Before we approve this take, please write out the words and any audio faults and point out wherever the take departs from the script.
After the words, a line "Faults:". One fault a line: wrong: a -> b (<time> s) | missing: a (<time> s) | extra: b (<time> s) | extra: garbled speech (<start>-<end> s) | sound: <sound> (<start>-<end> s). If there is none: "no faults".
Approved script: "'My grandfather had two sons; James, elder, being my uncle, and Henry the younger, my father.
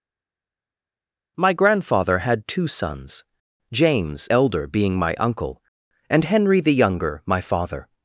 "'My grandfather had two sons; James, elder, being my uncle, and Henry the younger, my father.
Faults:
no faults